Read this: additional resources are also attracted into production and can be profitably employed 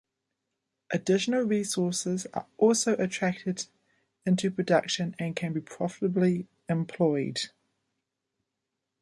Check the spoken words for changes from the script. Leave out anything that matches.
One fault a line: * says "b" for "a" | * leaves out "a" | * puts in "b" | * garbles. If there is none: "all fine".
all fine